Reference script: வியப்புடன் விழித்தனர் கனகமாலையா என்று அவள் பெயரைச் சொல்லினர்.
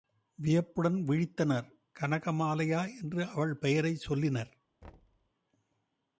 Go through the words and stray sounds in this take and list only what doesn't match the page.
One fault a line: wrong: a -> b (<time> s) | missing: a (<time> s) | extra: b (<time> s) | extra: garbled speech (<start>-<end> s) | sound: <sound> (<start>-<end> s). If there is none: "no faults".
sound: thud (4.8-5.3 s)